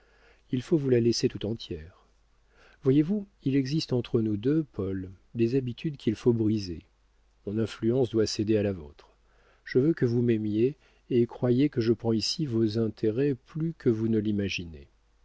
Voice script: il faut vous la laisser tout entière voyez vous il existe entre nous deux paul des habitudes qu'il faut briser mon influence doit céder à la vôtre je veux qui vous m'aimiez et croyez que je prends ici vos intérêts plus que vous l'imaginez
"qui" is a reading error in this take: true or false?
true